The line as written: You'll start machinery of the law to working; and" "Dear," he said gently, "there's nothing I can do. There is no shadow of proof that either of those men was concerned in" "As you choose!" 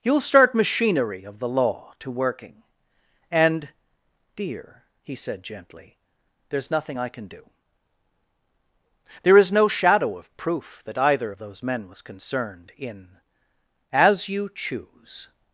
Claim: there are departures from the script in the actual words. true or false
false